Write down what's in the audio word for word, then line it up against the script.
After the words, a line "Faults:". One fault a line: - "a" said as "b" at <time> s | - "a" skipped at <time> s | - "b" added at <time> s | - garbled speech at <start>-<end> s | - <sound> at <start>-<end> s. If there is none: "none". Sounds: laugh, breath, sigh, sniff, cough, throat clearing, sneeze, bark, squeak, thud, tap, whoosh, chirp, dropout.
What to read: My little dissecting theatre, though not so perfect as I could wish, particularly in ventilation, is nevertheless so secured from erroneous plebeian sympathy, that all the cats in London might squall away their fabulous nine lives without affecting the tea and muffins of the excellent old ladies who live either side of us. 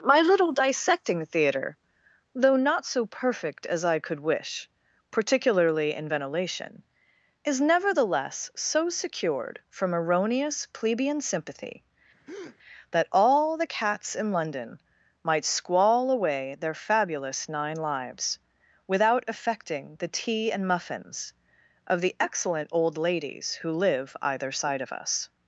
My little dissecting theatre, though not so perfect as I could wish, particularly in ventilation, is nevertheless so secured from erroneous plebeian sympathy, that all the cats in London might squall away their fabulous nine lives without affecting the tea and muffins of the excellent old ladies who live either side of us.
Faults:
- breath at 12.3-12.6 s